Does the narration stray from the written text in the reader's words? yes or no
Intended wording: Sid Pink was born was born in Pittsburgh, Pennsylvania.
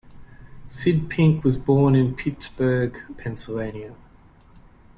yes